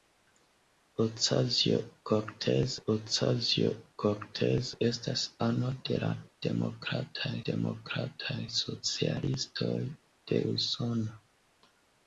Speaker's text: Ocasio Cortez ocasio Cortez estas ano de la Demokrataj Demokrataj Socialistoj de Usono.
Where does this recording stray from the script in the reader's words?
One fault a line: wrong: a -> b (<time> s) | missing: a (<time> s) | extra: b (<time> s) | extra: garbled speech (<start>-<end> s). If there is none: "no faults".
no faults